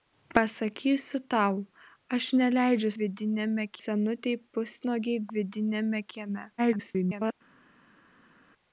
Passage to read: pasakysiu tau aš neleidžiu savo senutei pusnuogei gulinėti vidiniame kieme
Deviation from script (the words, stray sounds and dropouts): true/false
true